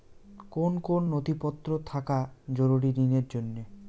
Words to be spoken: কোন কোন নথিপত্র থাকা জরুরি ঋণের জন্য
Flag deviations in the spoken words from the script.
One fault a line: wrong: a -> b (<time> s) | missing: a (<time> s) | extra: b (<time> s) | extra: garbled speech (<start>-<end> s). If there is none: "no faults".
no faults